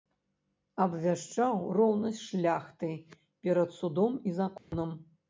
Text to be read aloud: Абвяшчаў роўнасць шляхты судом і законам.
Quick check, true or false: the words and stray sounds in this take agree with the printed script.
false